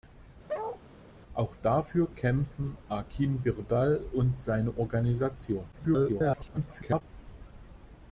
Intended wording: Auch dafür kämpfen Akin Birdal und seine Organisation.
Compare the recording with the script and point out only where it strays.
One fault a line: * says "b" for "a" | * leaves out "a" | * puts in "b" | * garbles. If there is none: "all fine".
* garbles